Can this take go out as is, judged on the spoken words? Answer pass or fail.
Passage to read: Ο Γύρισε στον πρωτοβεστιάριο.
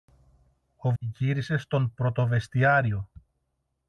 pass